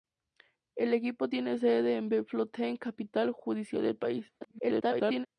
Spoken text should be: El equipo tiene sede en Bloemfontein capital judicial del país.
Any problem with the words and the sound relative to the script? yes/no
yes